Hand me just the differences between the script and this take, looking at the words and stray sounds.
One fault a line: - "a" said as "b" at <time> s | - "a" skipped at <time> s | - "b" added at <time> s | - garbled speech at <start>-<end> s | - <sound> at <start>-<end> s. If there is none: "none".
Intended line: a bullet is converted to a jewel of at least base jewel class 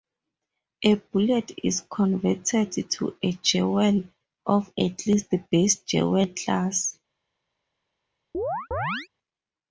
- chirp at 8.3-9.1 s